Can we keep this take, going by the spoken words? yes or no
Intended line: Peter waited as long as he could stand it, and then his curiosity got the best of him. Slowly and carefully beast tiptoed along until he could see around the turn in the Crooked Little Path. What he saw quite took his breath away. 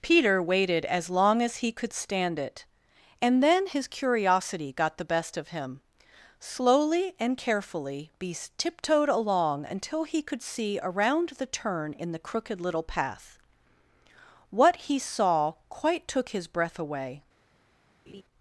yes